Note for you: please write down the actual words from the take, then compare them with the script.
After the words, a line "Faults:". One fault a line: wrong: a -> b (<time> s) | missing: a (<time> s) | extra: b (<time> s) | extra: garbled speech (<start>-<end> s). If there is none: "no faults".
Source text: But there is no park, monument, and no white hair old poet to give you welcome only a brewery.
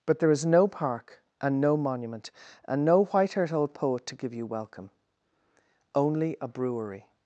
But there is no park, and no monument, and no white haired old poet to give you welcome only a brewery.
Faults:
extra: and no (1.4 s)
wrong: hair -> haired (3.3 s)